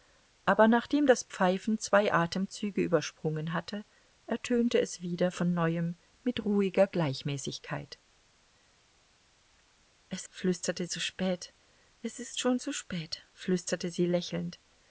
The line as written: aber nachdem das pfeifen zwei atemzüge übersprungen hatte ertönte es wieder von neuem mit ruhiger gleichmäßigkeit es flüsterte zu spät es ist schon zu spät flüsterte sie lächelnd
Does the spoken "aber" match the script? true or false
true